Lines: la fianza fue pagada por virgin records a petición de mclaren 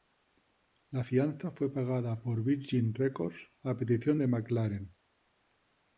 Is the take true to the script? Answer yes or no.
yes